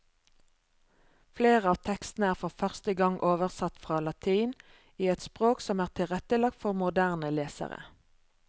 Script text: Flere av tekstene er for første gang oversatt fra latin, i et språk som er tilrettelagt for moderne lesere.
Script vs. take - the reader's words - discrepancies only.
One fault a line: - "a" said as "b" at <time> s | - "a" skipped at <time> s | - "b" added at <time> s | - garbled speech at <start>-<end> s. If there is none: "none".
none